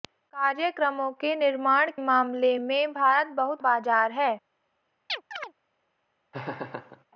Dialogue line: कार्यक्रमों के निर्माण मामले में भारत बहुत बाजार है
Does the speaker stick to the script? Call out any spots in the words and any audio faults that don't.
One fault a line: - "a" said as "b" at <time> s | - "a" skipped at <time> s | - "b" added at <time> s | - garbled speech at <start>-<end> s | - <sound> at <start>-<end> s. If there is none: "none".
- chirp at 5.1-5.5 s
- laugh at 6.3-7.0 s